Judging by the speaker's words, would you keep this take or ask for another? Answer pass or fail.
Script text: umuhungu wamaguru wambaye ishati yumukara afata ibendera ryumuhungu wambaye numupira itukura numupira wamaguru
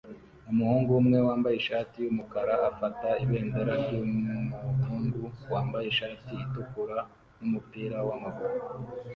fail